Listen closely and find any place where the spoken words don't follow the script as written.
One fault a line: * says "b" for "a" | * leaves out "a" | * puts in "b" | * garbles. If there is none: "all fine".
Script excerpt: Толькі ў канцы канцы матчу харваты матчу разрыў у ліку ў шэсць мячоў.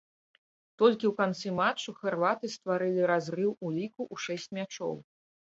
* leaves out "канцы"
* says "стварылі" for "матчу"